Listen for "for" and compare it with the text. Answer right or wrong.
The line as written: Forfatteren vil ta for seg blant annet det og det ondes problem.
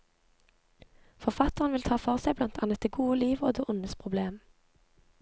right